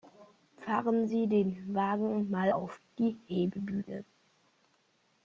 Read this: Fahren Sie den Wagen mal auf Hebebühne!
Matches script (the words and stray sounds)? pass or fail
fail